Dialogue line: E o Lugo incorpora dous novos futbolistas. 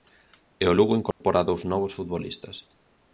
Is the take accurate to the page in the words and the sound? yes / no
no